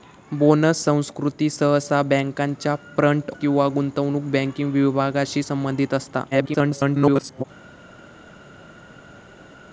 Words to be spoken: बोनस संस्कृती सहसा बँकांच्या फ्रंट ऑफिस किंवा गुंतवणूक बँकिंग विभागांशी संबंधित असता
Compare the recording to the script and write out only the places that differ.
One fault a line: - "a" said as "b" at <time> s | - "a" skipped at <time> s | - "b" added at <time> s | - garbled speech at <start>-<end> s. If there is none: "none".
- "ऑफिस" skipped at 3.3 s
- garbled speech at 6.3-7.4 s